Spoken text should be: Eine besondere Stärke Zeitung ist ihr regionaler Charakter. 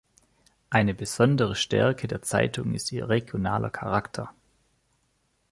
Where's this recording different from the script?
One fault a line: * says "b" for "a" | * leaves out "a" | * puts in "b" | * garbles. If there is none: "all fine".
* puts in "der"